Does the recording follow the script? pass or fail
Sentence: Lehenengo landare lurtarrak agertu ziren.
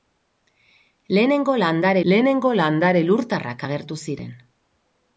fail